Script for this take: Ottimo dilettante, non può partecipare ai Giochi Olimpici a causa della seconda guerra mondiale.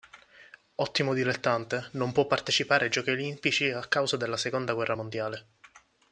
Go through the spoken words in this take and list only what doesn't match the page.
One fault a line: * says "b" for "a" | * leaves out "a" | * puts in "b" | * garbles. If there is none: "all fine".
all fine